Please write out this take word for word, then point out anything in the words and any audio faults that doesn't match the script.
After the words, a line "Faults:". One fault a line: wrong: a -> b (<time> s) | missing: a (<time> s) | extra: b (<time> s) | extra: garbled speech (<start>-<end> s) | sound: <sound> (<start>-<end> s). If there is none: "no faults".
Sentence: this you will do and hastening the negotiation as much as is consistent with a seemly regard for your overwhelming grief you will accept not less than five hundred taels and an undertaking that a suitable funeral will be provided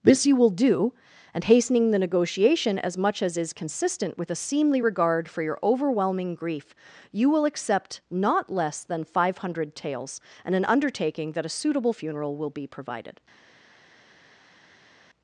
this you will do and hastening the negotiation as much as is consistent with a seemly regard for your overwhelming grief you will accept not less than five hundred taels and an undertaking that a suitable funeral will be provided
Faults:
no faults